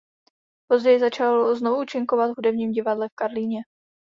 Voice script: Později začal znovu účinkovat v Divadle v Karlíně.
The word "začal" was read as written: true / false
true